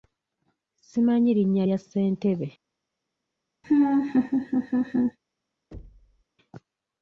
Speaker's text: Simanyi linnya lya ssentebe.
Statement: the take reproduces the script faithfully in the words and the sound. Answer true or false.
false